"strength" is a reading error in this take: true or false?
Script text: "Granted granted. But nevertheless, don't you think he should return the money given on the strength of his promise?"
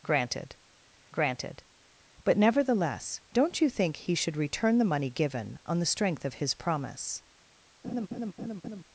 false